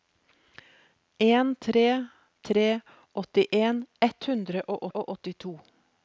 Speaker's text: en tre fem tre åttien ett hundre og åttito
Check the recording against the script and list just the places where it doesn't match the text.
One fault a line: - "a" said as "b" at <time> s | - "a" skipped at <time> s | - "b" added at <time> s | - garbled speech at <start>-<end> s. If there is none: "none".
- "fem" skipped at 2.0 s
- "og" added at 4.9 s